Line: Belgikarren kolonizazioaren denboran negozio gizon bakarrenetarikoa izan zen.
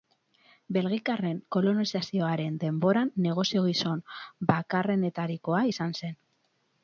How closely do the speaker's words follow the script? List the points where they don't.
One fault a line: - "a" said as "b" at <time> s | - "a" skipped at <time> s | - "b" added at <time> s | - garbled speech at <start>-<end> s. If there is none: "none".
none